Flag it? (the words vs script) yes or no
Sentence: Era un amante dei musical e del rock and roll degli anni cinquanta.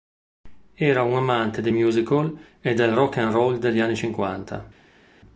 no